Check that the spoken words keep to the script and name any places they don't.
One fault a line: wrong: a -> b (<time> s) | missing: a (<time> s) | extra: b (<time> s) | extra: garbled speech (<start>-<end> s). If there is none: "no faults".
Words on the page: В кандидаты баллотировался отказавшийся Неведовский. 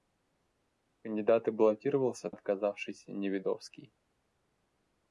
no faults